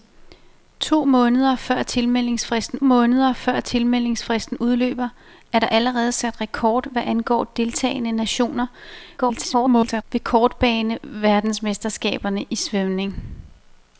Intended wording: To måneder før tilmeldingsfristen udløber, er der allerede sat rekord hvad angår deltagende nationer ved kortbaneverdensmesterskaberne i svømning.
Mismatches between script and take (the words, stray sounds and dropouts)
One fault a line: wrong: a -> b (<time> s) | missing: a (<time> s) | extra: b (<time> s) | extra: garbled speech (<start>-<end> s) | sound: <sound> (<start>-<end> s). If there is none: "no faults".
extra: måneder før tilmeldingsfristen (2.8 s)
extra: garbled speech (9.2-10.0 s)